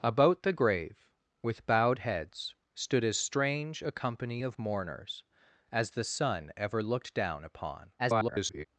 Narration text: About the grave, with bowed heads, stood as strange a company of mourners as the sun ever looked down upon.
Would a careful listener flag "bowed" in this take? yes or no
no